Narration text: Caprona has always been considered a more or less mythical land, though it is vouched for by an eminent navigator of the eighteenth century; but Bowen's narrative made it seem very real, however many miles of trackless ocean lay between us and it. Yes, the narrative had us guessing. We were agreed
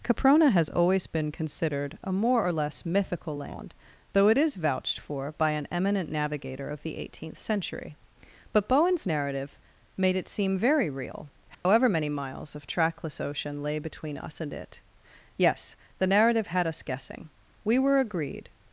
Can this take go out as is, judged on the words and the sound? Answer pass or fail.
fail